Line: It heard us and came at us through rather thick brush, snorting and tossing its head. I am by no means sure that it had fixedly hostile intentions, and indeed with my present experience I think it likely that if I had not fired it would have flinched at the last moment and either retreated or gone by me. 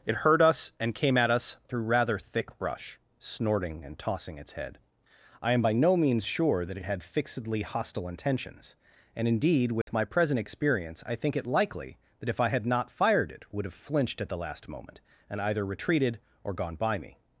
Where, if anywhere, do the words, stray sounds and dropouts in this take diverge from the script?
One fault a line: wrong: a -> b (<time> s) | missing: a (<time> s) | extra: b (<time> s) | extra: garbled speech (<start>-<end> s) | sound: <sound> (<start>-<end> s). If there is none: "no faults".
sound: dropout (9.8-9.9 s)